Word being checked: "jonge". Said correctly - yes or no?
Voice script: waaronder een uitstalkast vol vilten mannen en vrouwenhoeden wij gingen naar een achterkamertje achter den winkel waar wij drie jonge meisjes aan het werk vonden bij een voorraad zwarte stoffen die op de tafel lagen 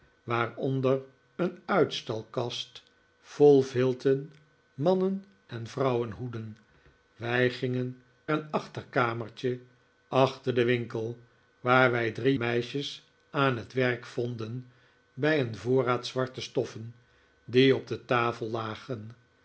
no